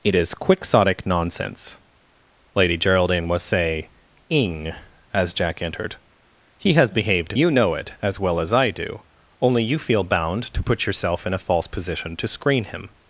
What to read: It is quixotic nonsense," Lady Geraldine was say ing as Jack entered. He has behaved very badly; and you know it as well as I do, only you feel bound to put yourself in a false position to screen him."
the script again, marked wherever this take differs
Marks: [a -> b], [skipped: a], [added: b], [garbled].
It is quixotic nonsense," Lady Geraldine was say ing as Jack entered. He has behaved [skipped: very badly; and] you know it as well as I do, only you feel bound to put yourself in a false position to screen him."